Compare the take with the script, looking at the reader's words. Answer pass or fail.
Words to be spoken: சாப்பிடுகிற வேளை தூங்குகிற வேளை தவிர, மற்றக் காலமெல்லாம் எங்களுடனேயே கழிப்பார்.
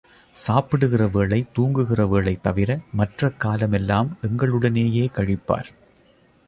pass